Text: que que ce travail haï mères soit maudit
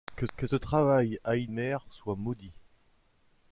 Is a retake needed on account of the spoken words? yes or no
no